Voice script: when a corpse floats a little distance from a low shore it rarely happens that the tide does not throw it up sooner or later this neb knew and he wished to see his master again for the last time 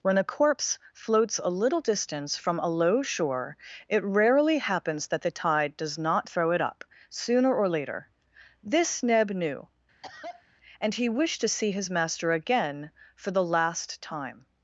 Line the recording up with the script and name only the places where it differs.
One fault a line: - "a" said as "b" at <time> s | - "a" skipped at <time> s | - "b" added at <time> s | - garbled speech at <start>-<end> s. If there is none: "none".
none